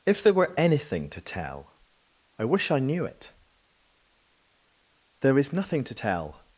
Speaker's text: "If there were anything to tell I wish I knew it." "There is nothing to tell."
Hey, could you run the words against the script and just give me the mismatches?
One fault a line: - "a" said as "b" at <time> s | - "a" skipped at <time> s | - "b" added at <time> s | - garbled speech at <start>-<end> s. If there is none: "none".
none